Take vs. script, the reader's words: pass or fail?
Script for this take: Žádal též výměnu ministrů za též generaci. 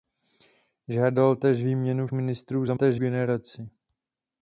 pass